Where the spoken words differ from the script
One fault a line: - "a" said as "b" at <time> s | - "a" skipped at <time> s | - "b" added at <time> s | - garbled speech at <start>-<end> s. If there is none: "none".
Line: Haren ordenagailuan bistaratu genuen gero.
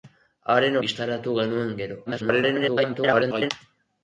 - "ordenagailuan" skipped at 0.8 s
- garbled speech at 2.1-3.5 s